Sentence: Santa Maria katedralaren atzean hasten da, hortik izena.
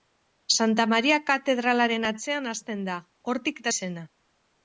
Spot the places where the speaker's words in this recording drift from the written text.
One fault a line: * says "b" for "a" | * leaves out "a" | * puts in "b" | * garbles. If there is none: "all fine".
all fine